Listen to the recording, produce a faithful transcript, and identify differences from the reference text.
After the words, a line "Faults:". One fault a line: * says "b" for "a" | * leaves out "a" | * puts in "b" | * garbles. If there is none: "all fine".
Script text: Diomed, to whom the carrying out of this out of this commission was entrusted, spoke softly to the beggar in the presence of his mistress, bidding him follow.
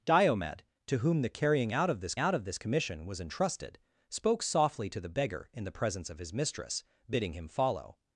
Diomed, to whom the carrying out of this out of this commission was entrusted, spoke softly to the beggar in the presence of his mistress, bidding him follow.
Faults:
all fine